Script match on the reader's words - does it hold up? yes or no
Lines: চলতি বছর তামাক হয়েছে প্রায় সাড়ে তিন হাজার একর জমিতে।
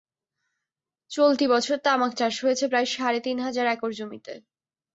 no